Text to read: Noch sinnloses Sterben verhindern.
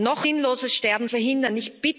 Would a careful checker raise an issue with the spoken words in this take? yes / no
no